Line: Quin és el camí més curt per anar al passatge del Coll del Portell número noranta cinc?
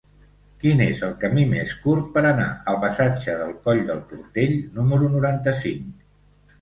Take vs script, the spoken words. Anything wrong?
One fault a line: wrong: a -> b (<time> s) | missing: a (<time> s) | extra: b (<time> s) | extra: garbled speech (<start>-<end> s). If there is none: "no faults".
no faults